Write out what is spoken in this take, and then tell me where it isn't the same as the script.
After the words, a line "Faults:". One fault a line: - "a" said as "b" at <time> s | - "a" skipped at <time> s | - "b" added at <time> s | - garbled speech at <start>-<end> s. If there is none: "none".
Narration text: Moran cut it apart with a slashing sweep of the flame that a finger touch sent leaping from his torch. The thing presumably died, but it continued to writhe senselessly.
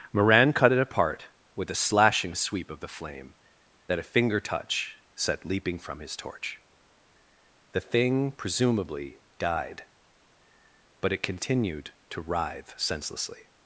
Moran cut it apart with a slashing sweep of the flame that a finger touch set leaping from his torch. The thing presumably died, but it continued to writhe senselessly.
Faults:
- "sent" said as "set" at 5.1 s